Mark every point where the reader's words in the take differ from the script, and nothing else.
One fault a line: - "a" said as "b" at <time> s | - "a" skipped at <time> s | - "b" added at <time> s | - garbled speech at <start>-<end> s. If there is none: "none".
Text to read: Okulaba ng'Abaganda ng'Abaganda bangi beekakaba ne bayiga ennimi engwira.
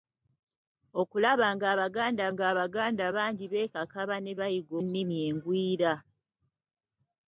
none